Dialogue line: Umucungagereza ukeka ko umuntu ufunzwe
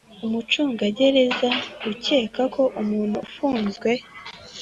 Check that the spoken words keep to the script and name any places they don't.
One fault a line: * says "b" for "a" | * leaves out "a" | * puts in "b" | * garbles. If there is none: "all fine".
all fine